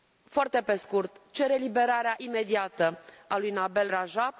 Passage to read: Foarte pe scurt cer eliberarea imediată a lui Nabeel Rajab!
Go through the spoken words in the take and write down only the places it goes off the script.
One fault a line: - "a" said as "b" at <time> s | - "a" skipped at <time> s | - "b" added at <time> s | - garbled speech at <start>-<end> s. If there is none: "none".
none